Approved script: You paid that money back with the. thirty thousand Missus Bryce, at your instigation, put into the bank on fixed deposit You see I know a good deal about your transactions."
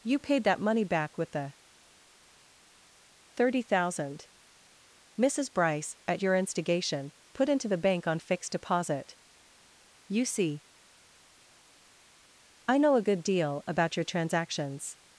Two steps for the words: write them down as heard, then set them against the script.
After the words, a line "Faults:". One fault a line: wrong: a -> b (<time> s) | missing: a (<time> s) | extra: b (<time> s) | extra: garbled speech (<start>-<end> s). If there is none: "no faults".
You paid that money back with the. thirty thousand Missus Bryce, at your instigation, put into the bank on fixed deposit You see I know a good deal about your transactions."
Faults:
no faults